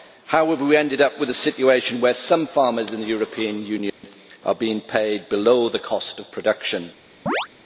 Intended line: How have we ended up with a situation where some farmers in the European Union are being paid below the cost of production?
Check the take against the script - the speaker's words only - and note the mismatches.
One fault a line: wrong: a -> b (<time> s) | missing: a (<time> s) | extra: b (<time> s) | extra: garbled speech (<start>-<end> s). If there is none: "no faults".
no faults